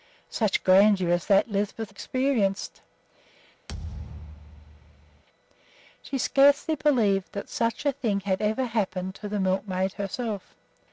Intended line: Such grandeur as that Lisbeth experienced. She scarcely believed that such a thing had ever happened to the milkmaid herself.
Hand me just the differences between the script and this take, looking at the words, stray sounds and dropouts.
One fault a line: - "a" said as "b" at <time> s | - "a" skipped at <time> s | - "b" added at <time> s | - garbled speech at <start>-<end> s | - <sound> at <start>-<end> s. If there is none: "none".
- thud at 3.7-5.2 s